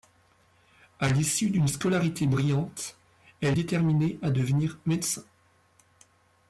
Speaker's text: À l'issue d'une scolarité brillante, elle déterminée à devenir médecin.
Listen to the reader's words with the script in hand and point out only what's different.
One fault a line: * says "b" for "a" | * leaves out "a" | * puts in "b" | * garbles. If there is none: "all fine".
all fine